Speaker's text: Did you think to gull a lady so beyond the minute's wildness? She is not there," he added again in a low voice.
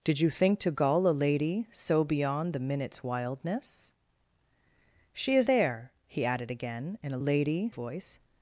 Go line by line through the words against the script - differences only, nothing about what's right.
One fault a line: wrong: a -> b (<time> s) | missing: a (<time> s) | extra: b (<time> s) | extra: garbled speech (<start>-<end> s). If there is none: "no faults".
missing: not (5.5 s)
wrong: low -> lady (7.2 s)